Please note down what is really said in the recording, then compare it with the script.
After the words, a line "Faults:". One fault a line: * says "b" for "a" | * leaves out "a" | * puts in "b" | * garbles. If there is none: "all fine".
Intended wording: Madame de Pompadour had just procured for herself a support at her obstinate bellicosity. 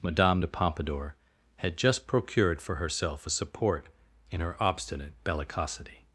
Madame de Pompadour had just procured for herself a support in her obstinate bellicosity.
Faults:
* says "in" for "at"